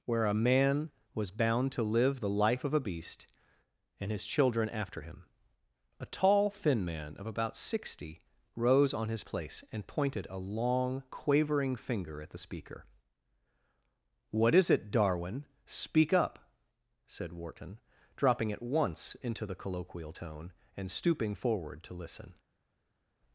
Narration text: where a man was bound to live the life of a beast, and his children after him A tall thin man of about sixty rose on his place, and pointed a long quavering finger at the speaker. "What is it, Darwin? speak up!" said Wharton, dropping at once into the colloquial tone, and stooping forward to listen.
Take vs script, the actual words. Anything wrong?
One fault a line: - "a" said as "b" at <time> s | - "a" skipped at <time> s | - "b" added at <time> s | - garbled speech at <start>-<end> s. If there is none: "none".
none